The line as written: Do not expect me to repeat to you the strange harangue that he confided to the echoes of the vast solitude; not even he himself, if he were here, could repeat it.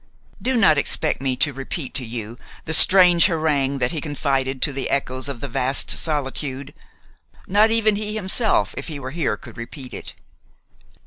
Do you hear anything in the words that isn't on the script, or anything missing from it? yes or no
no